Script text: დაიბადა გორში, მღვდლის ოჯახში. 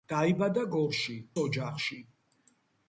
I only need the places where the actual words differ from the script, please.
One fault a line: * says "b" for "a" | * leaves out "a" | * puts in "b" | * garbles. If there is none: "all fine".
* leaves out "მღვდლის"